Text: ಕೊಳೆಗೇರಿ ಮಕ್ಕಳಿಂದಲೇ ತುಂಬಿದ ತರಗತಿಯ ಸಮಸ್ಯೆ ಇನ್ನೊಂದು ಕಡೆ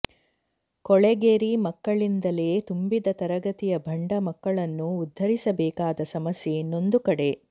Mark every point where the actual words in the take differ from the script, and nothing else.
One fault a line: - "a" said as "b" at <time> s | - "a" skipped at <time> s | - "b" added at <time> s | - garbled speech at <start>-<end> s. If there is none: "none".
- "ಭಂಡ ಮಕ್ಕಳನ್ನು ಉದ್ಧರಿಸಬೇಕಾದ" added at 3.9 s